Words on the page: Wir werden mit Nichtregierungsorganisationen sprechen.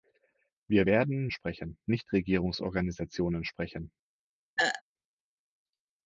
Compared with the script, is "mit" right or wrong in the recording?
wrong